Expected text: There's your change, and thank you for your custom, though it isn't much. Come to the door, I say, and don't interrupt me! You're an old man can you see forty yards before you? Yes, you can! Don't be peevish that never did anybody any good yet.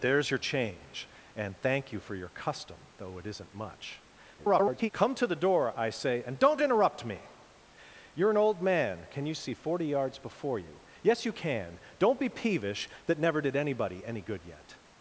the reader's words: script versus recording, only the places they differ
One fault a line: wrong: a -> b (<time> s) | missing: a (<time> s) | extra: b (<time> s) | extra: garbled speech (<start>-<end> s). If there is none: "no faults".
extra: garbled speech (4.4-4.9 s)